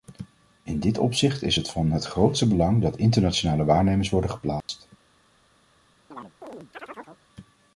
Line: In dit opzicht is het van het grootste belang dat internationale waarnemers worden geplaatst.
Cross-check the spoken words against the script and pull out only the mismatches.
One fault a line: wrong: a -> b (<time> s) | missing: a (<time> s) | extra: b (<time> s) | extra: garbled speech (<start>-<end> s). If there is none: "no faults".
no faults